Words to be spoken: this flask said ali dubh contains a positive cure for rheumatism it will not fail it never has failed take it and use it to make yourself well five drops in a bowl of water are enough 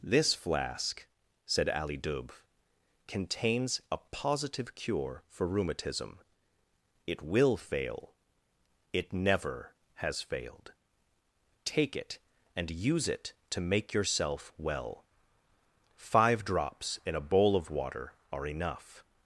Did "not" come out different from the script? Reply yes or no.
yes